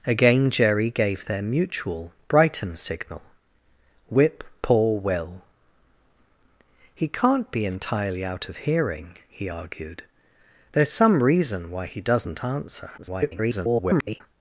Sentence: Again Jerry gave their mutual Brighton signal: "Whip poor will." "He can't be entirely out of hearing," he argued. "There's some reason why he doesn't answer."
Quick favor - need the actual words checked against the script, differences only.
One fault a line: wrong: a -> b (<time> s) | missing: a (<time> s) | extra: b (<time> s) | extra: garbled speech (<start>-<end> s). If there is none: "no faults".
extra: garbled speech (13.0-14.2 s)